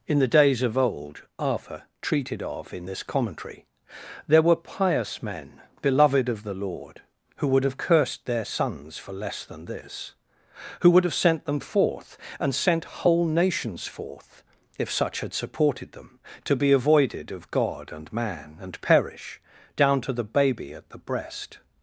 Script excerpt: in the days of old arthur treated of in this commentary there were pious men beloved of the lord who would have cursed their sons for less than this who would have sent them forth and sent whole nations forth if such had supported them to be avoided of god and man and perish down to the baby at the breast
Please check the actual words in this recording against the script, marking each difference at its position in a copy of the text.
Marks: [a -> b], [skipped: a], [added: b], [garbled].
in the days of old arthur treated of in this commentary there were pious men beloved of the lord who would have cursed their sons for less than this who would have sent them forth and sent whole nations forth if such had supported them to be avoided of god and man and perish down to the baby at the breast